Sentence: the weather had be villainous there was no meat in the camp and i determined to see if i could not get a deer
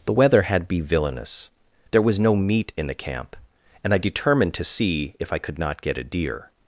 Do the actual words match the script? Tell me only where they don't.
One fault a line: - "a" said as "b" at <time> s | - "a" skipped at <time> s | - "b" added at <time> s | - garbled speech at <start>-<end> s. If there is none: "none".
none